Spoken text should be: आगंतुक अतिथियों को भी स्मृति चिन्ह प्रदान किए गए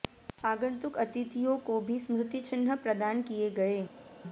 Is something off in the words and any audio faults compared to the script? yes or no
no